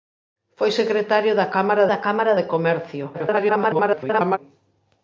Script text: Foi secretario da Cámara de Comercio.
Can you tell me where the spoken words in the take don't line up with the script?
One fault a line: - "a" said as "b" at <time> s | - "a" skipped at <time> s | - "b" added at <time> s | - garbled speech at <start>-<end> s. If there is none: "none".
- "da Cámara" added at 1.9 s
- garbled speech at 3.1-4.4 s